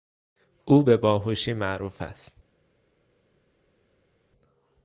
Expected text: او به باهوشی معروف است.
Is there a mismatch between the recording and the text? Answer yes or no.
no